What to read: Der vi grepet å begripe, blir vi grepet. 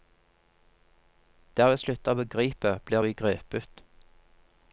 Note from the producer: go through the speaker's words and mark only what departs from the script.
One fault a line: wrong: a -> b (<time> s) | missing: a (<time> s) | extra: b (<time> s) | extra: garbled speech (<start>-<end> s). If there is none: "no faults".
wrong: grepet -> slutter (1.8 s)